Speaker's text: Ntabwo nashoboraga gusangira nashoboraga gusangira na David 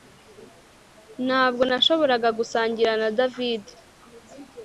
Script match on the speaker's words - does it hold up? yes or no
no